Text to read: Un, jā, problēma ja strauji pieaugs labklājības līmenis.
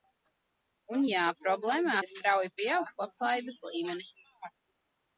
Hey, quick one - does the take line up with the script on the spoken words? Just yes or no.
yes